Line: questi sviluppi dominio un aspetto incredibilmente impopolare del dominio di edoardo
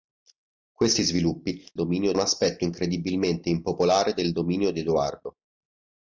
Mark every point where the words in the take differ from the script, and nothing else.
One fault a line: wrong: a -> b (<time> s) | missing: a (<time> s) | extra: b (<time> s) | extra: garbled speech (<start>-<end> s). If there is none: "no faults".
no faults